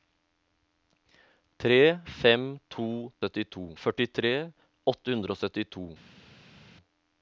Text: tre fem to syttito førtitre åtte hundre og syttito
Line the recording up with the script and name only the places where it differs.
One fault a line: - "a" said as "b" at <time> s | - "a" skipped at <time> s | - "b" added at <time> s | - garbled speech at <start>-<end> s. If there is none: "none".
none